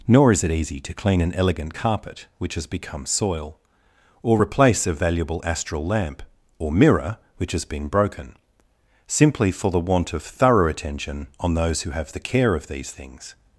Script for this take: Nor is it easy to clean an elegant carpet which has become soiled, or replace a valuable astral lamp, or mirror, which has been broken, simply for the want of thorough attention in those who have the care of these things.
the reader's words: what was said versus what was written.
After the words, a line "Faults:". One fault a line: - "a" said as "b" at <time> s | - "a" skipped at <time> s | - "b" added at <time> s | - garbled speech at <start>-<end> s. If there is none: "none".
Nor is it easy to clean an elegant carpet which has become soil, or replace a valuable astral lamp, or mirror, which has been broken, simply for the want of thorough attention on those who have the care of these things.
Faults:
- "soiled" said as "soil" at 3.0 s
- "in" said as "on" at 11.4 s